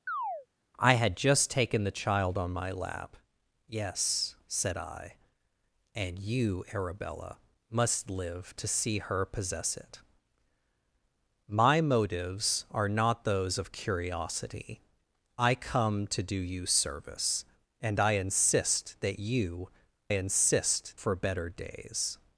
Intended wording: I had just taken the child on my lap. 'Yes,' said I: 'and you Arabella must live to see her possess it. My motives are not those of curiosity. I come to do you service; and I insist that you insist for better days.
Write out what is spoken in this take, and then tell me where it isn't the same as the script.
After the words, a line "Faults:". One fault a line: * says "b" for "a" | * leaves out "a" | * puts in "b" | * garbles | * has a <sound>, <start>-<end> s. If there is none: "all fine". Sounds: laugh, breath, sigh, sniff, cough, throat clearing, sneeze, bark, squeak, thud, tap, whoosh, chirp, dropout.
I had just taken the child on my lap. 'Yes,' said I: 'and you Arabella must live to see her possess it. My motives are not those of curiosity. I come to do you service; and I insist that you insist for better days.
Faults:
* has a chirp, 0.1-0.5 s